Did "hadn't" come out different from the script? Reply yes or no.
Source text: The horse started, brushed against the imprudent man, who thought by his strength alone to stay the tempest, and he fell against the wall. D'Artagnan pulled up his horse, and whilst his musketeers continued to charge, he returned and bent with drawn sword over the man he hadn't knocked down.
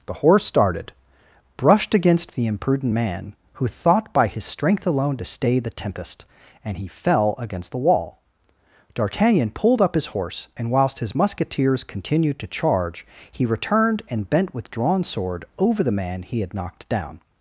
yes